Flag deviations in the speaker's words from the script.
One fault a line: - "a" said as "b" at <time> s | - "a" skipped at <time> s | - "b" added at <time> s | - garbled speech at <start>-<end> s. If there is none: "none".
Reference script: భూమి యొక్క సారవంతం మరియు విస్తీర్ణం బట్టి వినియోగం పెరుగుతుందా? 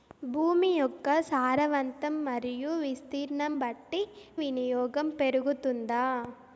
none